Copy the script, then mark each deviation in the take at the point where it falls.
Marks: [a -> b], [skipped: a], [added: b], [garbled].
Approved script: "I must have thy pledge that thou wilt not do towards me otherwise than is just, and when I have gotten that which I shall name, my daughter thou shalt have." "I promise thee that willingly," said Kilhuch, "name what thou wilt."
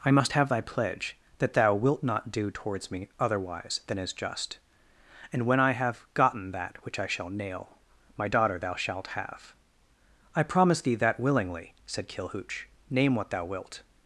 "I must have thy pledge that thou wilt not do towards me otherwise than is just, and when I have gotten that which I shall [name, -> nail] my daughter thou shalt have." "I promise thee that willingly," said Kilhuch, "name what thou wilt."